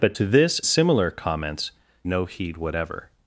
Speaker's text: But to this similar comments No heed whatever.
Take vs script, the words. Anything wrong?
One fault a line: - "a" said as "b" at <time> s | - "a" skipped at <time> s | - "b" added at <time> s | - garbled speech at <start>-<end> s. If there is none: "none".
none